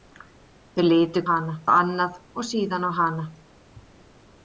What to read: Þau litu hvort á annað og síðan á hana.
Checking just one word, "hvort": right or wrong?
wrong